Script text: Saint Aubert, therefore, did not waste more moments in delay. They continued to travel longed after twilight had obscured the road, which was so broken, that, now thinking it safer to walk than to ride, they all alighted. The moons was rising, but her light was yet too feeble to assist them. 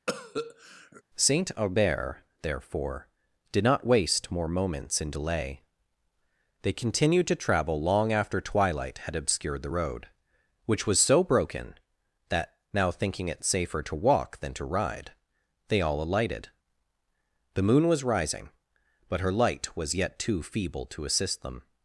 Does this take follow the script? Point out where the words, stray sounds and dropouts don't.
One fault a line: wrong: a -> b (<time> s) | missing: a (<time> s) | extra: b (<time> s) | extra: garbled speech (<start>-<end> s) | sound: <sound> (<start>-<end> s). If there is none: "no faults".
sound: cough (0.1-1.0 s)
wrong: longed -> long (7.8 s)
wrong: moons -> moon (17.6 s)